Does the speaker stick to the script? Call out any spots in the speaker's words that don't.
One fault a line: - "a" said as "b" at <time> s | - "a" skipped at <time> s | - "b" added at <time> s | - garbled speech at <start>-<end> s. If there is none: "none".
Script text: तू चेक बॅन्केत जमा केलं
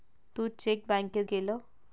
- "जमा" skipped at 1.2 s